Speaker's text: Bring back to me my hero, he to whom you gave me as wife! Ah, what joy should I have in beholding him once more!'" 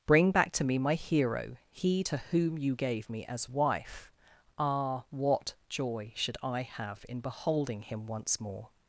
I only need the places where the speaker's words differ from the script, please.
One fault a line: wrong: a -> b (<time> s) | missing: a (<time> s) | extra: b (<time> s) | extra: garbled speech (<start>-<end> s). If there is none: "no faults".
no faults